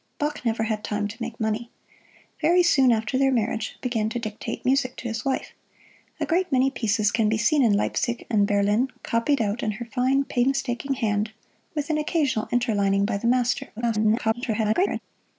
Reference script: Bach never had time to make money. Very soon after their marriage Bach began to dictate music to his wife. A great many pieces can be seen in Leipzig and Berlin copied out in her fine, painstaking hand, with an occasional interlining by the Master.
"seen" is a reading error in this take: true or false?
false